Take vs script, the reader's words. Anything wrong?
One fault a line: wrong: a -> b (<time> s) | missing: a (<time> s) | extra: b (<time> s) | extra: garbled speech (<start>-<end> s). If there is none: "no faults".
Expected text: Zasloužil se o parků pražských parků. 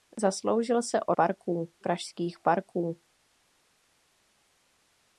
no faults